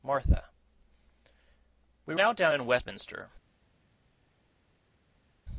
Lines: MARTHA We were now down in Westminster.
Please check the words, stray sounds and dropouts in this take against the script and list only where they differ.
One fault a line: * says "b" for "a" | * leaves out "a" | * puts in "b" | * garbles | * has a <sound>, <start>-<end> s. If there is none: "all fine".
* leaves out "were"